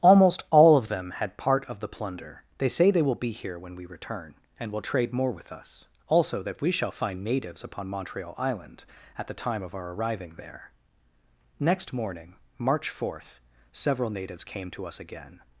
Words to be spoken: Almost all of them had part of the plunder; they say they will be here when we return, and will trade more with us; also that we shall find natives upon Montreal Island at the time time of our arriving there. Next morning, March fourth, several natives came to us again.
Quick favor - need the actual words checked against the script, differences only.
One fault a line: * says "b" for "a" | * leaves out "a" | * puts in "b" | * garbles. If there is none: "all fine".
* leaves out "time"